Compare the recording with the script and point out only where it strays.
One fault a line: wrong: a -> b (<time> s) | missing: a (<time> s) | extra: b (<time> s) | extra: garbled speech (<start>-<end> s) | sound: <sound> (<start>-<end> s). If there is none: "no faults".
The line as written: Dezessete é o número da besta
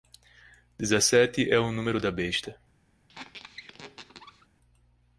sound: squeak (3.1-4.5 s)